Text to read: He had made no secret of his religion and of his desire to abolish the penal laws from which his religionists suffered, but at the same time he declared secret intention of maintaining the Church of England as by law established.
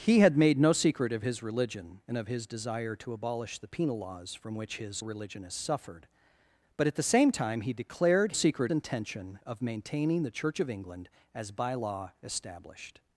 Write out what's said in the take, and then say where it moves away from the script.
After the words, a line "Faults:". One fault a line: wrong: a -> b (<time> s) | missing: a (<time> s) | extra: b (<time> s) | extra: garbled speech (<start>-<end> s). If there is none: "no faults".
He had made no secret of his religion and of his desire to abolish the penal laws from which his religionists suffered, but at the same time he declared secret intention of maintaining the Church of England as by law established.
Faults:
no faults